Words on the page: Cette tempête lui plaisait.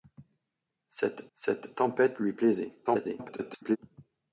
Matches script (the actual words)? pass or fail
fail